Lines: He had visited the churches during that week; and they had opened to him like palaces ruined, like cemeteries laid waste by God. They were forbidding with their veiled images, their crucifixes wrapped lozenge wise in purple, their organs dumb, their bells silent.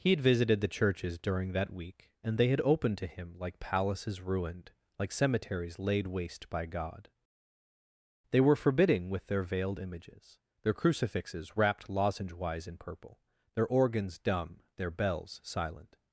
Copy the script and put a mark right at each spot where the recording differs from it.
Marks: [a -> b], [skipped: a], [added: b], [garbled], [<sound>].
He had visited the churches during that week; and they had opened to him like palaces ruined, like cemeteries laid waste by God. They were forbidding with their veiled images, their crucifixes wrapped lozenge wise in purple, their organs dumb, their bells silent.